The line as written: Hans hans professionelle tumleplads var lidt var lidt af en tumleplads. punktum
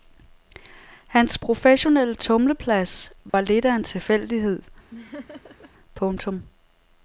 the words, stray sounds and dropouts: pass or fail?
fail